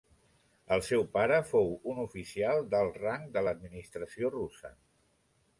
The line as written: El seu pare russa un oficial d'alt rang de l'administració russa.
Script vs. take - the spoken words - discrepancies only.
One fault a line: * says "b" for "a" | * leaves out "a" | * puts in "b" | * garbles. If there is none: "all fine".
* says "fou" for "russa"